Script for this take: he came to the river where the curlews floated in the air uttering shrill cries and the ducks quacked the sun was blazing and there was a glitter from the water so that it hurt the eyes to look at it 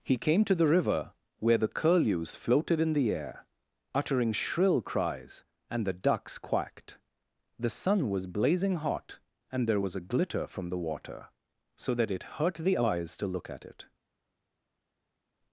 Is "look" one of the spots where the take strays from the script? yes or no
no